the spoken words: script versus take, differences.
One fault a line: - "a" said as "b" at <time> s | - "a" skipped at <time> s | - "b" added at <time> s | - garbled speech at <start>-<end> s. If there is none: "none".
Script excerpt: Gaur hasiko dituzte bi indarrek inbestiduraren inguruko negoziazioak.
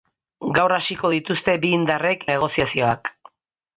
- "inbestiduraren inguruko" skipped at 2.2 s